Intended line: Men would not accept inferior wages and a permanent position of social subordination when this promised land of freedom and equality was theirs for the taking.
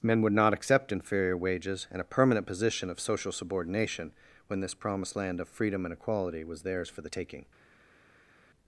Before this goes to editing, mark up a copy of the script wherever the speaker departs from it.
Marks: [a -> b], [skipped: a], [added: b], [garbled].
Men would not accept inferior wages and a permanent position of social subordination when this promised land of freedom and equality was theirs for the taking.